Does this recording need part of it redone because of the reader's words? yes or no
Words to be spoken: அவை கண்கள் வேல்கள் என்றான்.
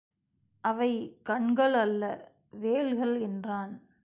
yes